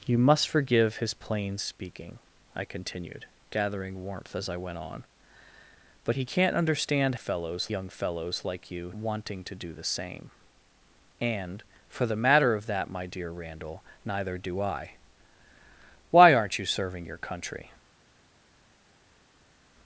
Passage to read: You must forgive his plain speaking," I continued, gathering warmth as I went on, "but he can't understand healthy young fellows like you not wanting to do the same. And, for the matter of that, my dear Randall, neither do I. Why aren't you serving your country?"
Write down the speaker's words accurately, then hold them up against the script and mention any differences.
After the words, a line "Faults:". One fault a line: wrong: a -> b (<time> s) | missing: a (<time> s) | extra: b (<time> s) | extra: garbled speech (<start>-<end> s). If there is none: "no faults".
You must forgive his plain speaking," I continued, gathering warmth as I went on, "but he can't understand fellows young fellows like you wanting to do the same. And, for the matter of that, my dear Randall, neither do I. Why aren't you serving your country?"
Faults:
wrong: healthy -> fellows (7.1 s)
missing: not (8.9 s)